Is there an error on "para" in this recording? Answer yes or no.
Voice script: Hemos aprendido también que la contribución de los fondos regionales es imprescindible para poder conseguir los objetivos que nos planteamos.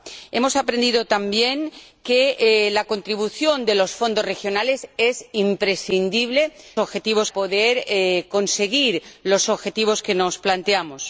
yes